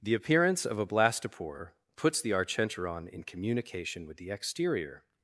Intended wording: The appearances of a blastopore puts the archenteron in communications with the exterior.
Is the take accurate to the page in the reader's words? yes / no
no